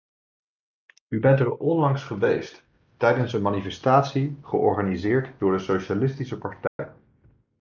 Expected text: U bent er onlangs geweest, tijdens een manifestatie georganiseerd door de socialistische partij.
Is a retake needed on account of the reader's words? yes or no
no